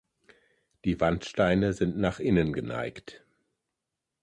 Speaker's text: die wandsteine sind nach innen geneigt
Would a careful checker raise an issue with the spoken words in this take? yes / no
no